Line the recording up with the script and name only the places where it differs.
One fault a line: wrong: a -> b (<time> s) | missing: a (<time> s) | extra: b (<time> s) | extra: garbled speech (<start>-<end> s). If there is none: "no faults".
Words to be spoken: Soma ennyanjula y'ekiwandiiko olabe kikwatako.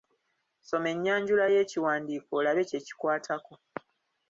extra: kye (2.7 s)